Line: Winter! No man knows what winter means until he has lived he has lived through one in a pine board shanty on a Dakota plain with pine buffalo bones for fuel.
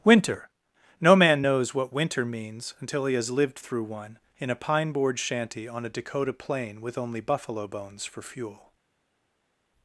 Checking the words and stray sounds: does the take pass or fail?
fail